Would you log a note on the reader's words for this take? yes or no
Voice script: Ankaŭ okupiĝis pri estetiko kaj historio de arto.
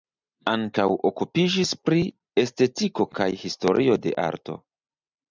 no